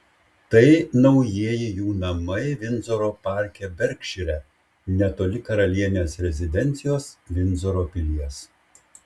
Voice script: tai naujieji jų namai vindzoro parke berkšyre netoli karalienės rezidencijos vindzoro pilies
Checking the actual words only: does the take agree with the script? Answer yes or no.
yes